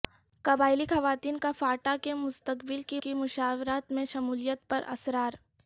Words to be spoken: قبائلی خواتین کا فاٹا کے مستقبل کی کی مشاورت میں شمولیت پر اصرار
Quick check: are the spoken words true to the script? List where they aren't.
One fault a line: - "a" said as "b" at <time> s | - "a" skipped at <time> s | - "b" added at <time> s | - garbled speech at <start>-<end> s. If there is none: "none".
none